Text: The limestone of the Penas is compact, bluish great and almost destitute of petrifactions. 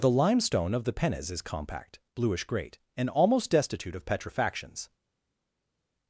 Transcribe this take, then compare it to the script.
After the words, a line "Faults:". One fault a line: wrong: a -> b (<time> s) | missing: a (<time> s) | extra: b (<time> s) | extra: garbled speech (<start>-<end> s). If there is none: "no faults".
The limestone of the Penas is compact, bluish great and almost destitute of petrifactions.
Faults:
no faults